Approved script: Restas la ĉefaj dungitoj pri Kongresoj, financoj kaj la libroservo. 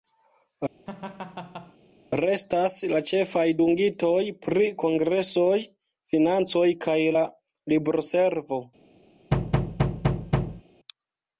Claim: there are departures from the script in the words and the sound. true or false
true